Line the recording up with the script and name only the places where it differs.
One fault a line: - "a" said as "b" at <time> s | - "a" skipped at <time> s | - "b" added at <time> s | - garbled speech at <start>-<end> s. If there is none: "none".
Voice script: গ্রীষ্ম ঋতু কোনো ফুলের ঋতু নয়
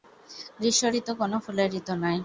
none